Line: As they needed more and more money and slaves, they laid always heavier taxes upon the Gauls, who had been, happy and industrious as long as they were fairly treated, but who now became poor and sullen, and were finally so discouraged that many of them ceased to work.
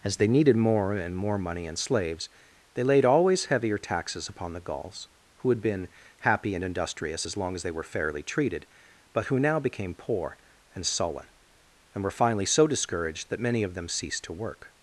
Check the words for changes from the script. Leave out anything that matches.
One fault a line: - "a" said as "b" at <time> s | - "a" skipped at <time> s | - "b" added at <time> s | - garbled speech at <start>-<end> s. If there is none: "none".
none